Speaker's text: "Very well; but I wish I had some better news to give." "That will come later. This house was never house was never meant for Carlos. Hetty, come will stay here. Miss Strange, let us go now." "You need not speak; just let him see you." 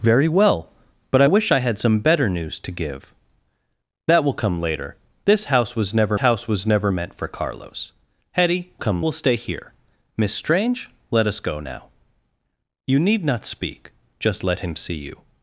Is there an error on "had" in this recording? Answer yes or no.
no